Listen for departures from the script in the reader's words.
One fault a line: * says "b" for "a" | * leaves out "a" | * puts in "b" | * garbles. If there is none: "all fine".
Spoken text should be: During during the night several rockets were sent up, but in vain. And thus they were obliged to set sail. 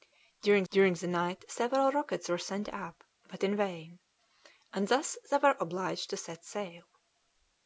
all fine